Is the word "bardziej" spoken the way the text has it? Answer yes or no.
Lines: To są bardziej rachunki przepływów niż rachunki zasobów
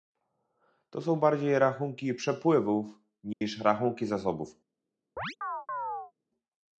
yes